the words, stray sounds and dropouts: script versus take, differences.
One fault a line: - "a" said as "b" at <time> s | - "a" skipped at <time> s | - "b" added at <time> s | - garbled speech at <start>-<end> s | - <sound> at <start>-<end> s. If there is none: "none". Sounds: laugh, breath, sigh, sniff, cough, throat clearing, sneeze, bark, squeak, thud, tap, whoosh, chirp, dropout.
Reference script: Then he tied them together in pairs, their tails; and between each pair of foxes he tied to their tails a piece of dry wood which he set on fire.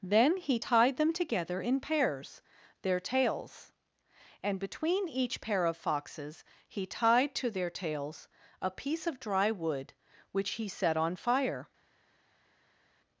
none